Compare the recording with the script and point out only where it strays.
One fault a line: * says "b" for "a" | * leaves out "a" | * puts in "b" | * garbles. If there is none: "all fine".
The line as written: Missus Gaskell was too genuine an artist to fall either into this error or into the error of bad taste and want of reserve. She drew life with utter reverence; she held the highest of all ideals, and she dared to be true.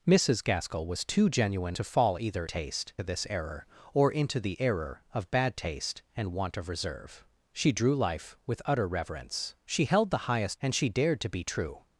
* leaves out "an artist"
* says "taste" for "into"
* leaves out "of all ideals"